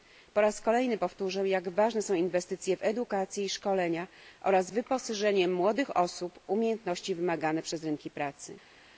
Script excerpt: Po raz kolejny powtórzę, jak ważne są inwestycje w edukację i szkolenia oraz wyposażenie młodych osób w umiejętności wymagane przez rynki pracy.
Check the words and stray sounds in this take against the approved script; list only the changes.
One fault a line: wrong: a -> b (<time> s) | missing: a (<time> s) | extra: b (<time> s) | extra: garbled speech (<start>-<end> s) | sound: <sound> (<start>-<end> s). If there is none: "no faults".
no faults